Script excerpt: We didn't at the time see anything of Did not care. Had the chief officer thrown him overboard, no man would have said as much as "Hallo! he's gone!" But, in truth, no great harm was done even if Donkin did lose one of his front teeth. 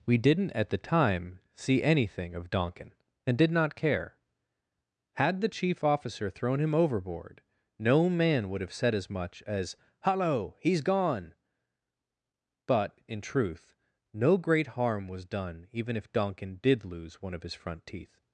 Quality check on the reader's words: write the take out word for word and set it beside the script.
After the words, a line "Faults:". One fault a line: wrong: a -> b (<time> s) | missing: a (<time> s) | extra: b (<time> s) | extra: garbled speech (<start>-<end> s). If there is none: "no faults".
We didn't at the time see anything of Donkin, and did not care. Had the chief officer thrown him overboard, no man would have said as much as "Hallo! he's gone!" But, in truth, no great harm was done even if Donkin did lose one of his front teeth.
Faults:
extra: Donkin and (2.5 s)